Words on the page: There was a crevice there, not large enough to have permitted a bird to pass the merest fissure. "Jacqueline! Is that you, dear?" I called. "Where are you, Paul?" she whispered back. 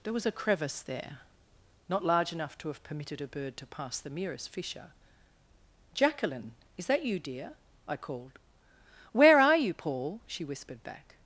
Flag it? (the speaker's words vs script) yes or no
no